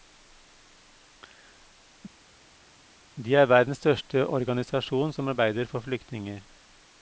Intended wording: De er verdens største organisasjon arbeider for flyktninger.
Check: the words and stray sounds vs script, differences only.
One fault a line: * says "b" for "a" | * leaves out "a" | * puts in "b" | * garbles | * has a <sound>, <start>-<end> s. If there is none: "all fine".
* puts in "som"